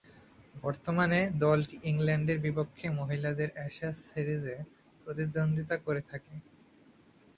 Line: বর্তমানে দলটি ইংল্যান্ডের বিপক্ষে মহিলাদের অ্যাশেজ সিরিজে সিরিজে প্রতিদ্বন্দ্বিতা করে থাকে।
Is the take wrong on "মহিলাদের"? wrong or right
right